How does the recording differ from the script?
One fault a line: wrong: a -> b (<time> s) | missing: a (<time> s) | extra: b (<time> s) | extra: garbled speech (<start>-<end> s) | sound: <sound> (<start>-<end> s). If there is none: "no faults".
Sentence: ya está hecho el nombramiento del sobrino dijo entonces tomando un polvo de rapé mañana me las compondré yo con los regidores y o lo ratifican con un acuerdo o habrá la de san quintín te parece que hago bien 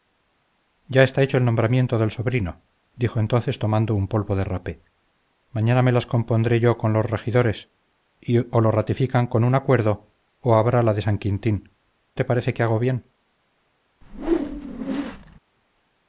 sound: whoosh (14.0-15.4 s)